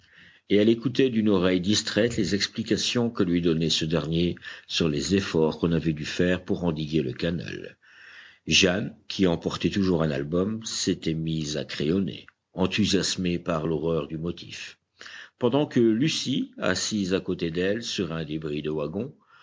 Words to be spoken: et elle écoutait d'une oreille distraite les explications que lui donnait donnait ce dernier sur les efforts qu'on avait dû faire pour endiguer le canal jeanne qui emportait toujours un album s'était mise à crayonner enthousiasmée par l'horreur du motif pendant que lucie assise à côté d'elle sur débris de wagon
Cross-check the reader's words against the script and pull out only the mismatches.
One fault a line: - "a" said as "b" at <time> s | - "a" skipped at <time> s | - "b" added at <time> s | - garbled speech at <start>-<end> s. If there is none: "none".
- "donnait" skipped at 3.7 s
- "un" added at 18.1 s